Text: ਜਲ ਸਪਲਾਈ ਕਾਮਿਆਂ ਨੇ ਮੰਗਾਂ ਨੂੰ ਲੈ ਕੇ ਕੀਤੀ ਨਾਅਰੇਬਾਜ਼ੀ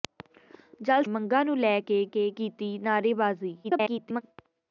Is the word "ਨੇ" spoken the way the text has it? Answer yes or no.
no